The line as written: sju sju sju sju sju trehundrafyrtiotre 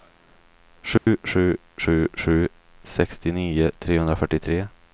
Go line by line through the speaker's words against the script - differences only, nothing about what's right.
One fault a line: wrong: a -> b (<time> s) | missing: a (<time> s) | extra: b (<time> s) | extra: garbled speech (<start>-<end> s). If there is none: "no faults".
wrong: sju -> sextionio (2.8 s)